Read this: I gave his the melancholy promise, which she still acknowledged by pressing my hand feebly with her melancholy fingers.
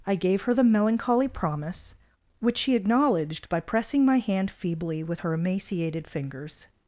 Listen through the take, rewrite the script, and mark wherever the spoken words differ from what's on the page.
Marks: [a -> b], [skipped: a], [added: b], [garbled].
I gave [his -> her] the melancholy promise, which she [skipped: still] acknowledged by pressing my hand feebly with her [melancholy -> emaciated] fingers.